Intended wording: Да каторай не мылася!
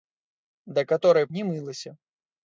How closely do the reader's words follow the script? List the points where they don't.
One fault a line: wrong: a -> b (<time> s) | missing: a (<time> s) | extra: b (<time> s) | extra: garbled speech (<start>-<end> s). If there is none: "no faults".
no faults